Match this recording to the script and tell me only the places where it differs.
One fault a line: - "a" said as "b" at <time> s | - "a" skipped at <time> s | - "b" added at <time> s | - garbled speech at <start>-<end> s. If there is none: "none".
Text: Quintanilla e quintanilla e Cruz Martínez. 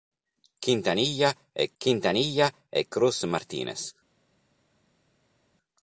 none